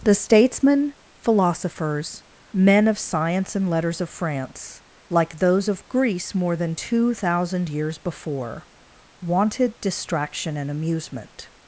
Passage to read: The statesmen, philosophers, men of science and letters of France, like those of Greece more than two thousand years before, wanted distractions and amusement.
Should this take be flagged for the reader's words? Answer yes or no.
yes